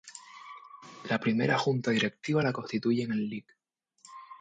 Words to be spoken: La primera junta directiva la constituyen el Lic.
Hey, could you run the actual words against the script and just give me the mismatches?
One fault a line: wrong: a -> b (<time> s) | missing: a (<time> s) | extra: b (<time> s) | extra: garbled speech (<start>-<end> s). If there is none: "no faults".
no faults